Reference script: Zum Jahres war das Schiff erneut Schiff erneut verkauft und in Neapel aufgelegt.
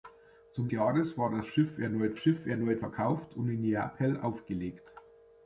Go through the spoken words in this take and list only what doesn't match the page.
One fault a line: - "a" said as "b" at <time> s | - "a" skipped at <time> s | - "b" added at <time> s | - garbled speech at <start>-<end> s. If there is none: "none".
none